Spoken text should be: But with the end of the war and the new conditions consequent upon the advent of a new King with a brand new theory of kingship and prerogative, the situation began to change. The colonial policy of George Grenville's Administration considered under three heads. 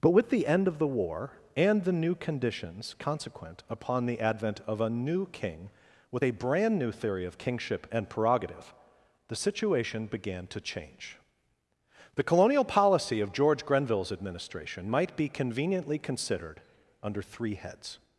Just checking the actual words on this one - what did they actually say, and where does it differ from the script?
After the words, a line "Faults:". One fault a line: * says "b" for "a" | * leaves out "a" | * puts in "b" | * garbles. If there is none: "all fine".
But with the end of the war and the new conditions consequent upon the advent of a new King with a brand new theory of kingship and prerogative, the situation began to change. The colonial policy of George Grenville's Administration might be conveniently considered under three heads.
Faults:
* puts in "might be conveniently"